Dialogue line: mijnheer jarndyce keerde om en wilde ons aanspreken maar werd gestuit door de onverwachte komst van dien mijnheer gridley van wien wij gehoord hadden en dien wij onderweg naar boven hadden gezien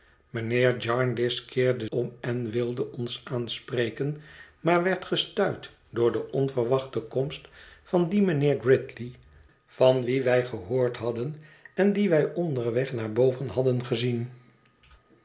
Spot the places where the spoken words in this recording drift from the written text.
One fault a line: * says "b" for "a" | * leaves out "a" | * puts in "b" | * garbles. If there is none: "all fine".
all fine